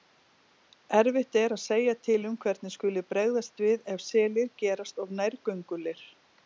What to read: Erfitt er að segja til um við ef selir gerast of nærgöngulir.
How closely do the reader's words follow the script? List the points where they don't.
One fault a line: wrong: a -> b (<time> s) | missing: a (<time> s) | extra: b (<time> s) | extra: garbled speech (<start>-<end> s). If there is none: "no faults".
extra: hvernig skuli bregðast (2.5 s)